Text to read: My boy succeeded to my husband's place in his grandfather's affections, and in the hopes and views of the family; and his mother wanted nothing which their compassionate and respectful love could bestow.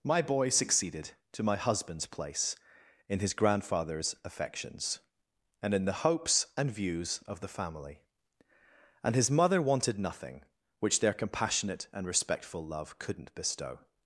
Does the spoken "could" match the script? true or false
false